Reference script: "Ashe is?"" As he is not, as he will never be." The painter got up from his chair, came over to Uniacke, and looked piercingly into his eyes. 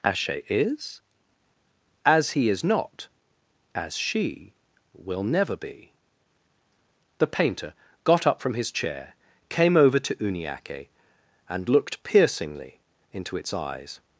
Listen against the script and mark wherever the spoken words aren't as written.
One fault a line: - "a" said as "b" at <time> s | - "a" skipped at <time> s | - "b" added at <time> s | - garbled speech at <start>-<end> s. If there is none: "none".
- "he" said as "she" at 4.0 s
- "his" said as "its" at 13.4 s